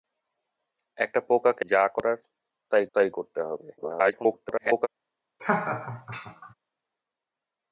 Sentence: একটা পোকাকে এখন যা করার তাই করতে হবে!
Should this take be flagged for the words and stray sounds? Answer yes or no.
yes